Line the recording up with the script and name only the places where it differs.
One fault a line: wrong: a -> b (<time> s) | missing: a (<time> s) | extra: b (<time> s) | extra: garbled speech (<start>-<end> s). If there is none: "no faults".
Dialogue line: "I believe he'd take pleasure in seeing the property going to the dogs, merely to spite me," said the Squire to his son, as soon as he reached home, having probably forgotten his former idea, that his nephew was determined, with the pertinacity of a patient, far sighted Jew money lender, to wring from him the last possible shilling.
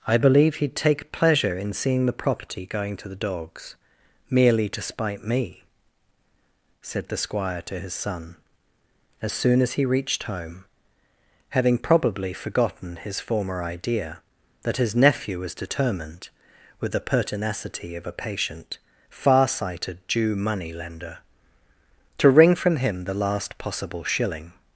no faults